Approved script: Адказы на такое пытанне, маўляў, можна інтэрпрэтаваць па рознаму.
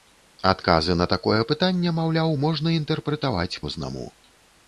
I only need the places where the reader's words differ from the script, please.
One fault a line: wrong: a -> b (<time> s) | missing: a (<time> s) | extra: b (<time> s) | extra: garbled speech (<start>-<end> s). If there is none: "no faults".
missing: па (3.6 s)